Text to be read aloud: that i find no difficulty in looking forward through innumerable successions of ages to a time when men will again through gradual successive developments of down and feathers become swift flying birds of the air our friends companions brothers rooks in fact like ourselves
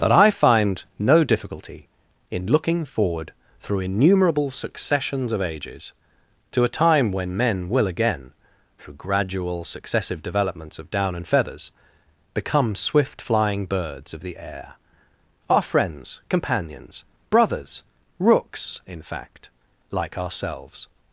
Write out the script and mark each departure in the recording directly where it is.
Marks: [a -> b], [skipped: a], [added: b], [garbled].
that i find no difficulty in looking forward through innumerable successions of ages to a time when men will again through gradual successive developments of down and feathers become swift flying birds of the air our friends companions brothers rooks in fact like ourselves